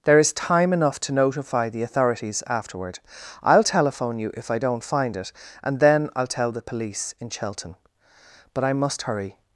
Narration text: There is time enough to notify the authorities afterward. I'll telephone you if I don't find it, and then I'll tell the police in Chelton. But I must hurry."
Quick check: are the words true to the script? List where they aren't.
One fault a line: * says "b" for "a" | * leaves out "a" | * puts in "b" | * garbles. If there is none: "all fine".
all fine